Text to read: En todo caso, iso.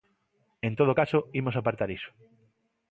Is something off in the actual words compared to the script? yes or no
yes